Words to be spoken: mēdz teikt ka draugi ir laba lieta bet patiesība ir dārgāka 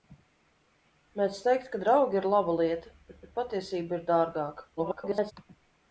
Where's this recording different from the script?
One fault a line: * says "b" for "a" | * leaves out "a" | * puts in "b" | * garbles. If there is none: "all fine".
* puts in "bet"
* garbles